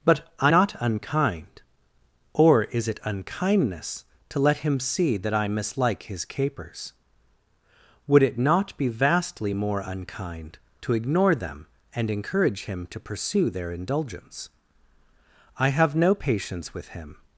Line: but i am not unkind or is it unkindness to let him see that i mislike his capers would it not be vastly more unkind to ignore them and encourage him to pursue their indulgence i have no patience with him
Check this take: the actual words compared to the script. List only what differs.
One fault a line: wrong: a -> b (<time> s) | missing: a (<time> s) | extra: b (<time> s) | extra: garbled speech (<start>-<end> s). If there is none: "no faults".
missing: am (0.5 s)